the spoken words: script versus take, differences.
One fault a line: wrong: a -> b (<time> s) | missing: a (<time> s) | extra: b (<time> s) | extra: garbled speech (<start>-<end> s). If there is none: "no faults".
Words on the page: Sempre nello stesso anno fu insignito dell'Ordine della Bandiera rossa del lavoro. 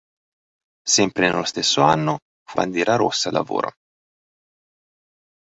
missing: insignito dell'Ordine della (2.6 s)
missing: del (3.3 s)